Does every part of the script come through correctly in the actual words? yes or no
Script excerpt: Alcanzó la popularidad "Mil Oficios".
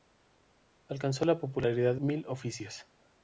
yes